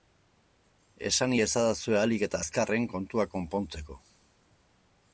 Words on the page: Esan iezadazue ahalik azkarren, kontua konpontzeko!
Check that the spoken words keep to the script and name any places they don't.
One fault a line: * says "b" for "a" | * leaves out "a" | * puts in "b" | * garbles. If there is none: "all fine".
* puts in "eta"